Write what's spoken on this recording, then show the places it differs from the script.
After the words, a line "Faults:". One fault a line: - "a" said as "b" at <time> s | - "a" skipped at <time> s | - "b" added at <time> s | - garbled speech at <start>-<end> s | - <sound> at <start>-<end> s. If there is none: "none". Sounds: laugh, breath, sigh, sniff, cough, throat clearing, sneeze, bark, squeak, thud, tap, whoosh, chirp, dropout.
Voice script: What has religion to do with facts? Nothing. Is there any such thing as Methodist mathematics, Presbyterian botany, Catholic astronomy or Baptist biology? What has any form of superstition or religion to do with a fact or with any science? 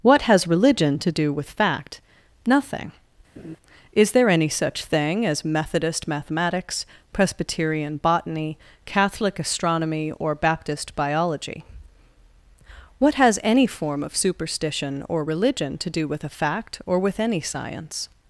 What has religion to do with fact? Nothing. Is there any such thing as Methodist mathematics, Presbyterian botany, Catholic astronomy or Baptist biology? What has any form of superstition or religion to do with a fact or with any science?
Faults:
- "facts" said as "fact" at 1.5 s
- laugh at 3.4-3.6 s